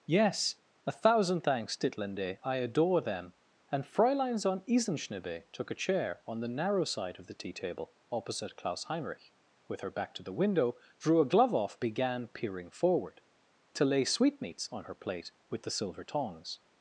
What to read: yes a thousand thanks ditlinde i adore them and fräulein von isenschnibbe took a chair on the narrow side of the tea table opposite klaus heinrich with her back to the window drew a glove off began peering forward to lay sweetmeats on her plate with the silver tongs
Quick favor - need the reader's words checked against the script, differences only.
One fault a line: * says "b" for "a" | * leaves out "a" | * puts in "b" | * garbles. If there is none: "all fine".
all fine